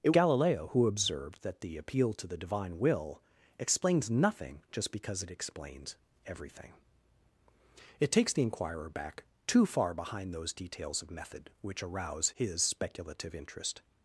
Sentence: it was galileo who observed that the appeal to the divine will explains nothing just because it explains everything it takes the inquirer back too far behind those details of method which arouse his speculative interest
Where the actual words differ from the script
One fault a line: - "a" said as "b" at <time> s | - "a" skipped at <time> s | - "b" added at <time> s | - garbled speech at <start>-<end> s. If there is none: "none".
- "was" skipped at 0.1 s